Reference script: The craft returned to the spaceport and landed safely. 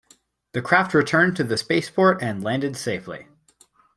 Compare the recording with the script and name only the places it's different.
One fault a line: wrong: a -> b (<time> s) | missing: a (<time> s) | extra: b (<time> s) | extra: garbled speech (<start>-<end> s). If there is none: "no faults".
no faults